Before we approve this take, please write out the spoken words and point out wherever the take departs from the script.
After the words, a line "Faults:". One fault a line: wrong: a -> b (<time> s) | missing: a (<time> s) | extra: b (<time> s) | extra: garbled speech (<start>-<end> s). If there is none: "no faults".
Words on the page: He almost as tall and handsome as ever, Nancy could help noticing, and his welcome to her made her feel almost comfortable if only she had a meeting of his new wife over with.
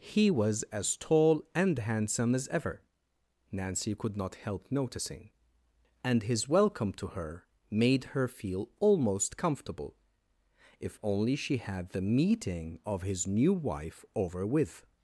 He was as tall and handsome as ever, Nancy could not help noticing, and his welcome to her made her feel almost comfortable if only she had the meeting of his new wife over with.
Faults:
wrong: almost -> was (0.3 s)
extra: not (4.2 s)
wrong: a -> the (11.9 s)